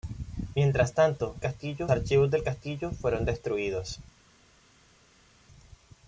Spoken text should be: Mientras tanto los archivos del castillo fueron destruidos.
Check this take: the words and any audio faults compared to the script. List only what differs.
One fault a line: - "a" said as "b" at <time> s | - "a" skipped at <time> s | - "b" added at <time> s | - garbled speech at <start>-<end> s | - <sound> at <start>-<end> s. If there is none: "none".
- "los" said as "castillo" at 1.4 s